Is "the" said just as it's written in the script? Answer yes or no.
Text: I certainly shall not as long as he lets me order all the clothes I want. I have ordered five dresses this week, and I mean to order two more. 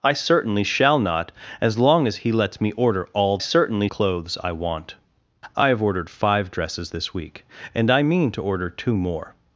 no